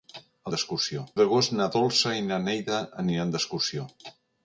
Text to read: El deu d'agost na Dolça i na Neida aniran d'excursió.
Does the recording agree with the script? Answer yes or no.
no